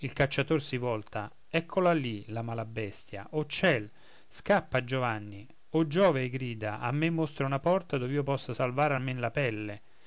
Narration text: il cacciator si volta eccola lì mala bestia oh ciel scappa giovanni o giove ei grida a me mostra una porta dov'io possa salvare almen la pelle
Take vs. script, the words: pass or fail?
fail